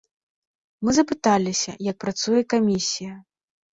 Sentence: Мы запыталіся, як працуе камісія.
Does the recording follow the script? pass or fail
pass